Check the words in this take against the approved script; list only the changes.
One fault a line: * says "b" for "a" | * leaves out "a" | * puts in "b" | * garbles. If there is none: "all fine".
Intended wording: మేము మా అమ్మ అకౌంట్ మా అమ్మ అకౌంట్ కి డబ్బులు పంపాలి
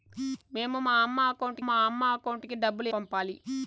all fine